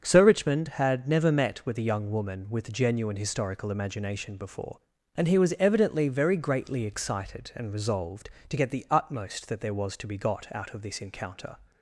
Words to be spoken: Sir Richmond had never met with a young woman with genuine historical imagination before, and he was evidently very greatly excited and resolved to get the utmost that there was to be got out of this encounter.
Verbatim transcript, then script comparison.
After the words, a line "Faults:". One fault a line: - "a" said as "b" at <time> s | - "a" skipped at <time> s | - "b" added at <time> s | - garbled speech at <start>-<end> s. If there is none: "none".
Sir Richmond had never met with a young woman with genuine historical imagination before, and he was evidently very greatly excited and resolved to get the utmost that there was to be got out of this encounter.
Faults:
none